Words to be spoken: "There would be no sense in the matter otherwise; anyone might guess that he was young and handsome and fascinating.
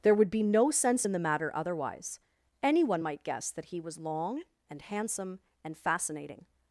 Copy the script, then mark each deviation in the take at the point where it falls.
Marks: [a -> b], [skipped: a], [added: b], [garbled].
"There would be no sense in the matter otherwise; anyone might guess that he was [young -> long] and handsome and fascinating.